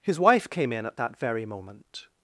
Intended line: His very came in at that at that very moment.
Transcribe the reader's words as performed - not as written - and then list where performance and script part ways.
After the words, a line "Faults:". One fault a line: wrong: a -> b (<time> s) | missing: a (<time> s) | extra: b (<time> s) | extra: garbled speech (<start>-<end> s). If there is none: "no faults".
His wife came in at that very moment.
Faults:
wrong: very -> wife (0.2 s)
missing: at that (1.2 s)